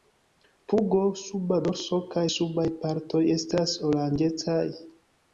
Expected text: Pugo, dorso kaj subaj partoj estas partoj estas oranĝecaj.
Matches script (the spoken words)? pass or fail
fail